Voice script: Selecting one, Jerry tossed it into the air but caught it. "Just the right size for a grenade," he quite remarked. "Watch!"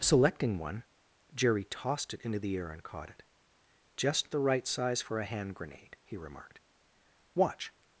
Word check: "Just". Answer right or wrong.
right